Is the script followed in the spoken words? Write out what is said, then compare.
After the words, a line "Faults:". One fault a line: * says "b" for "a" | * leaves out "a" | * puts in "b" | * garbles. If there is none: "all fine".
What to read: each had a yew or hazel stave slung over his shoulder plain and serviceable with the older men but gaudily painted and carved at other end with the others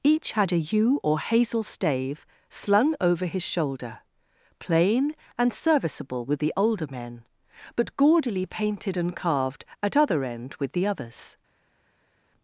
each had a yew or hazel stave slung over his shoulder plain and serviceable with the older men but gaudily painted and carved at other end with the others
Faults:
all fine